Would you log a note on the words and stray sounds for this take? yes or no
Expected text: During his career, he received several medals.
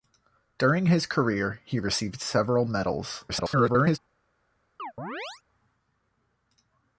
yes